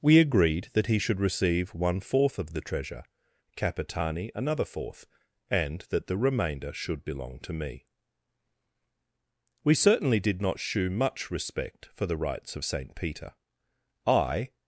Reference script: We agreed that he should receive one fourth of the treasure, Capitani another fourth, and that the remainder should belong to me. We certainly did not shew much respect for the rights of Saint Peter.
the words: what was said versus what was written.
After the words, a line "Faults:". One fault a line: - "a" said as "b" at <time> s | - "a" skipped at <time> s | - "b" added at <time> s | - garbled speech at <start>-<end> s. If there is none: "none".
We agreed that he should receive one fourth of the treasure, Capitani another fourth, and that the remainder should belong to me. We certainly did not shew much respect for the rights of Saint Peter. I
Faults:
- "I" added at 14.1 s